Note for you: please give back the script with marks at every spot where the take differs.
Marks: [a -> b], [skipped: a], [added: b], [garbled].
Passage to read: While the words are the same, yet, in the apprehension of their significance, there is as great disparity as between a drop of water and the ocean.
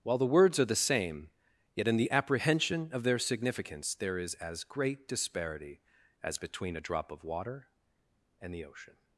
While the words are the same, yet, in the apprehension of their significance, there is as great disparity as between a drop of water and the ocean.